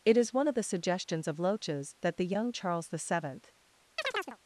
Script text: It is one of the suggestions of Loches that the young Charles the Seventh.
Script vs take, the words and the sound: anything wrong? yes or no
yes